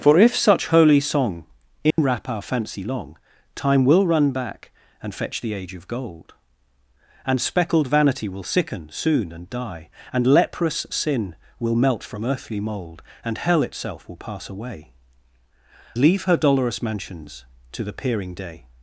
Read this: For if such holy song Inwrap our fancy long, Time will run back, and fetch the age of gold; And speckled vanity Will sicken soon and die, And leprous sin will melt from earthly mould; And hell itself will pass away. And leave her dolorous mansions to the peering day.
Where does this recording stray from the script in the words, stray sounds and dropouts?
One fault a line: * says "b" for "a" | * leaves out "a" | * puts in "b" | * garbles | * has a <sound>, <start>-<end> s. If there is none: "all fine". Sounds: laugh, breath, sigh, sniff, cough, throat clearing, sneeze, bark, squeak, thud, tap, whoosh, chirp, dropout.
* has a dropout, 1.9-2.0 s
* leaves out "And"